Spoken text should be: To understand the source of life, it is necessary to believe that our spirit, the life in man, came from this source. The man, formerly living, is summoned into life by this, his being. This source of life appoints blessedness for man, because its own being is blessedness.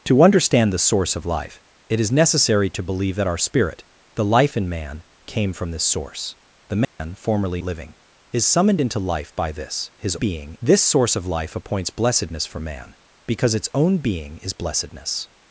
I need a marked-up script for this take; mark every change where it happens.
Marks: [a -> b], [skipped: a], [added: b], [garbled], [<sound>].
To understand the source of life, it is necessary to believe that our spirit, the life in man, came from this source. The man, [dropout] formerly living, is summoned into life by this, his being. This source of life appoints blessedness for man, because its own being is blessedness.